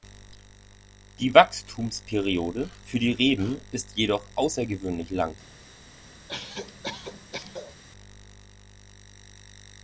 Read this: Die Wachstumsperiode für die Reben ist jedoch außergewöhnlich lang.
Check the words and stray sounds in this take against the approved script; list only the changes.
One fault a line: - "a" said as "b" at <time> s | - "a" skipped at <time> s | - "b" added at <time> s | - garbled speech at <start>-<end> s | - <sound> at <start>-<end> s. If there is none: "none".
- cough at 6.3-7.8 s